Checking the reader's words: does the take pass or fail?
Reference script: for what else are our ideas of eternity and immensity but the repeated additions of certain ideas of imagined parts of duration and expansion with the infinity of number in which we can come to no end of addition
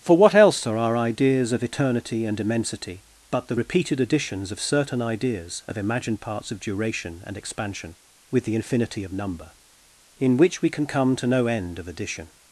pass